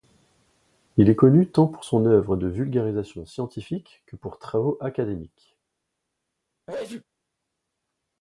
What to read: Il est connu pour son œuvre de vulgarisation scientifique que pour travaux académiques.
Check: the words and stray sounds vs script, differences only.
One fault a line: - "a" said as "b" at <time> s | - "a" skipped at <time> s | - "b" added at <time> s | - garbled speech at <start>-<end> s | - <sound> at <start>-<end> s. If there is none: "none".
- "tant" added at 1.5 s
- sneeze at 6.7-7.0 s